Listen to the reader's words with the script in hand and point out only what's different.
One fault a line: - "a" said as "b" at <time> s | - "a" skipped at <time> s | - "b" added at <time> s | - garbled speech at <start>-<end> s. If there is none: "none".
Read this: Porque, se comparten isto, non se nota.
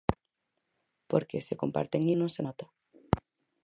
- "isto" skipped at 2.0 s